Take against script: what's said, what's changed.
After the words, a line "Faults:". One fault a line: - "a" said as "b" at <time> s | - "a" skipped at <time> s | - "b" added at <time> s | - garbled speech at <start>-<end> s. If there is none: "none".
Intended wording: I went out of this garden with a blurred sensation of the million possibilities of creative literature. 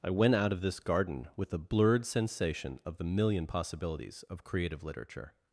I went out of this garden with a blurred sensation of the million possibilities of creative literature.
Faults:
none